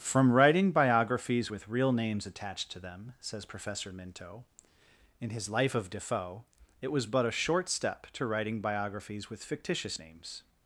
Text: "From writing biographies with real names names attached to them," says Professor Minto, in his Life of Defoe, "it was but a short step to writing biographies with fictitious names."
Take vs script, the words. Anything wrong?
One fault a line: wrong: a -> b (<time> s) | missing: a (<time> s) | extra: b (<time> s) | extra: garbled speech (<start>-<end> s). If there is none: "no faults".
missing: names (2.2 s)